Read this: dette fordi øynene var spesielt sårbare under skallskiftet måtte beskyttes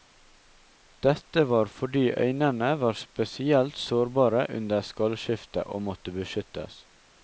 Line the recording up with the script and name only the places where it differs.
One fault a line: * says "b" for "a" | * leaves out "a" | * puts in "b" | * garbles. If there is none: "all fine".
* puts in "var"
* puts in "og"